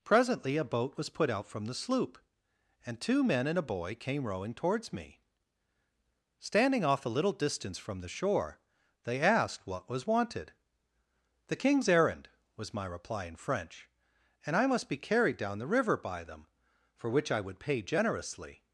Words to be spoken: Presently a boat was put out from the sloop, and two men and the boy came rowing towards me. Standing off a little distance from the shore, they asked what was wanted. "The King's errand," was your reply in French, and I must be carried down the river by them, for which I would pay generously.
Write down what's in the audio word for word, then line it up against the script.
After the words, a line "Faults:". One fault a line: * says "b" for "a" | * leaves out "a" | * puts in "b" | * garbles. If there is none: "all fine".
Presently a boat was put out from the sloop, and two men and a boy came rowing towards me. Standing off a little distance from the shore, they asked what was wanted. "The King's errand," was my reply in French, and I must be carried down the river by them, for which I would pay generously.
Faults:
* says "a" for "the"
* says "my" for "your"